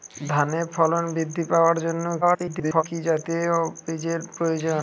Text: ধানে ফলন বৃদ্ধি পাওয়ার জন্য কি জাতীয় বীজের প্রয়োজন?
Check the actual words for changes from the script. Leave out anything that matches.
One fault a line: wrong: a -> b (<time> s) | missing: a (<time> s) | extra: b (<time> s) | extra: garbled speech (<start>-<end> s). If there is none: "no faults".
extra: garbled speech (2.2-2.8 s)